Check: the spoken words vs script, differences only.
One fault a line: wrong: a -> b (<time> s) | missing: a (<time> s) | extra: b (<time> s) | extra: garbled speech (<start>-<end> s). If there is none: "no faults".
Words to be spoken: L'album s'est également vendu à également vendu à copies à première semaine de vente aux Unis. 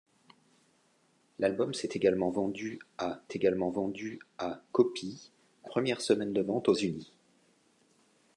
no faults